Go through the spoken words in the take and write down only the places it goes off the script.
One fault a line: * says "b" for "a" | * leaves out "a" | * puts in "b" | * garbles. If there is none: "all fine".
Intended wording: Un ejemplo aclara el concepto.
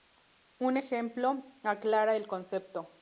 all fine